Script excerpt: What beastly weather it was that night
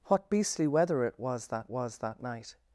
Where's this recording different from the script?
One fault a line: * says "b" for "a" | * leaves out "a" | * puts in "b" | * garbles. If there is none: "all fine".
* puts in "was that"